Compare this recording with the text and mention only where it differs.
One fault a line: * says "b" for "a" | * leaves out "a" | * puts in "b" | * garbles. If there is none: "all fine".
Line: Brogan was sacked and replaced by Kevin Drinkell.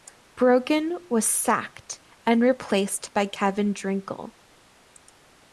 all fine